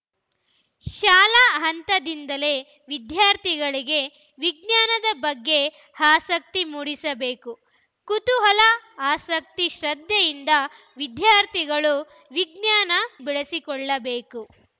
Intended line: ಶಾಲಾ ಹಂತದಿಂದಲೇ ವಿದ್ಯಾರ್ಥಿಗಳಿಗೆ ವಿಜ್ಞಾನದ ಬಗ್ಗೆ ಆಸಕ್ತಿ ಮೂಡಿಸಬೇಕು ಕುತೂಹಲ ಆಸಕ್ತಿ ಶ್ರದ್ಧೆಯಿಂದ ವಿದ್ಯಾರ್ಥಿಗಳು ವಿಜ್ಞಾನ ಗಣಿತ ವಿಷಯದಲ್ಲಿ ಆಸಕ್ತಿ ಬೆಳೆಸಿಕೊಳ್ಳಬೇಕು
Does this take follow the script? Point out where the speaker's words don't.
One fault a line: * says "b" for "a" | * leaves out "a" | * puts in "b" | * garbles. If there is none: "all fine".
* leaves out "ಗಣಿತ ವಿಷಯದಲ್ಲಿ ಆಸಕ್ತಿ"